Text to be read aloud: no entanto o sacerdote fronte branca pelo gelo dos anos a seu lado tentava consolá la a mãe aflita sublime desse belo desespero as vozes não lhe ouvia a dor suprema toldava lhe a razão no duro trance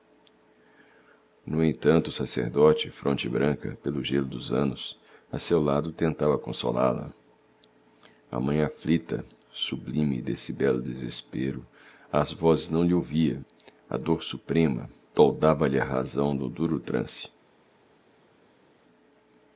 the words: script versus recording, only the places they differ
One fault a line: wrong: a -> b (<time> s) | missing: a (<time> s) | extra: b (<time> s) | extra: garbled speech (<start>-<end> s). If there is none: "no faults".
no faults